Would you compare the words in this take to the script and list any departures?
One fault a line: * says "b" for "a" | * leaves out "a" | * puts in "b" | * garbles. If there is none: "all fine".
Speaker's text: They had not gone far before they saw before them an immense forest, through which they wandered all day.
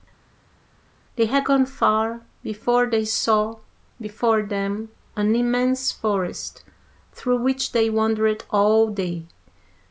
* leaves out "not"